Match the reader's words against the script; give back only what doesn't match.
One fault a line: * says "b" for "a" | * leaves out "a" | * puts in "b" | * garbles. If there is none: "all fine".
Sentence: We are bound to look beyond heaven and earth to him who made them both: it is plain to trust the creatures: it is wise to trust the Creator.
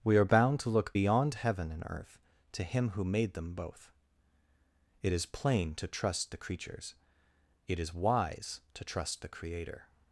all fine